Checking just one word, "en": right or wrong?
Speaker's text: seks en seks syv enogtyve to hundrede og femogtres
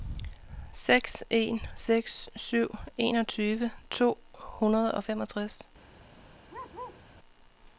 right